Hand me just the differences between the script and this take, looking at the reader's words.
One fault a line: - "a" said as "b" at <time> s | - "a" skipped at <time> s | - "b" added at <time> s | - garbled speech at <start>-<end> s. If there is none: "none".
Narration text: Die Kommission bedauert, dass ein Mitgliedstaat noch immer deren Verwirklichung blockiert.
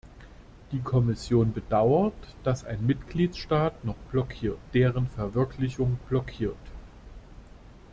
- "immer" said as "blockiert" at 4.1 s